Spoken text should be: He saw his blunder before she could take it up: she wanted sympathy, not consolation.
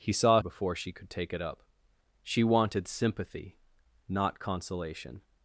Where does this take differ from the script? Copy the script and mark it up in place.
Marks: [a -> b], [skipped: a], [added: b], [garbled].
He saw [skipped: his blunder] before she could take it up: she wanted sympathy, not consolation.